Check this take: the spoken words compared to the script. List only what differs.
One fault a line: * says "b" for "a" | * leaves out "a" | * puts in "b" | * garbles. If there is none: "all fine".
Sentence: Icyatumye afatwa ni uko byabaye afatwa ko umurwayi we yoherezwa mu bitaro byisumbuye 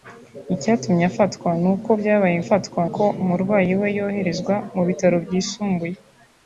all fine